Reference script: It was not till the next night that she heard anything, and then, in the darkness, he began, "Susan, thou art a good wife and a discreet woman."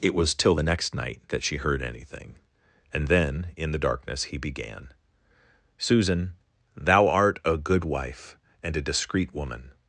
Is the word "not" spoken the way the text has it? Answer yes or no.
no